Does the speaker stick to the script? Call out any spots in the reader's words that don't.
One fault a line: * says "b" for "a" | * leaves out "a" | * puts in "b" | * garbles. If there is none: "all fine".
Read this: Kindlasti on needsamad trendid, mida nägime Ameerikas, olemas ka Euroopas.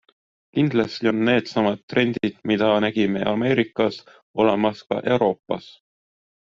all fine